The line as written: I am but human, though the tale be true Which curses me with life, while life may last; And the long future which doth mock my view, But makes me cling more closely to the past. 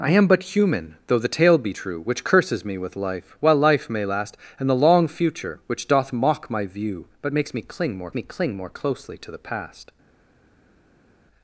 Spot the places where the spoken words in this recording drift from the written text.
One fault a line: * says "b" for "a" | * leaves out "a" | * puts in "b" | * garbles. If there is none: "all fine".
* puts in "me cling more"